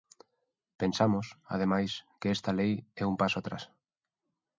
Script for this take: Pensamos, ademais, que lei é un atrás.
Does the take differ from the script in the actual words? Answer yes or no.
yes